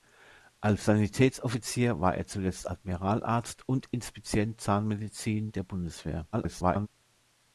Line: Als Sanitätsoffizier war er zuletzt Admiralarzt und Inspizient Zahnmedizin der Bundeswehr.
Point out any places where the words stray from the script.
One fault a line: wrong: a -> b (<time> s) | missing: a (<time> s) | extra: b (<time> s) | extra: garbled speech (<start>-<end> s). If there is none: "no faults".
extra: garbled speech (6.3-6.9 s)